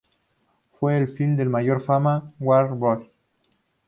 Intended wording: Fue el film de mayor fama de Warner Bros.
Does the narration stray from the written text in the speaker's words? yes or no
no